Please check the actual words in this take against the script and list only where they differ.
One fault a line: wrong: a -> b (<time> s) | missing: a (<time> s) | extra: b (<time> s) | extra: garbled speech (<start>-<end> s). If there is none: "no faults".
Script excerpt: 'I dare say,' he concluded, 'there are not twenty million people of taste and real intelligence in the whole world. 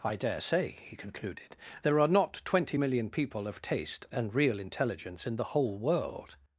no faults